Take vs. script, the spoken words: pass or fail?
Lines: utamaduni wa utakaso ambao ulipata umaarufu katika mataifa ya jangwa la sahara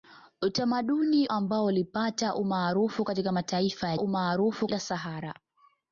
fail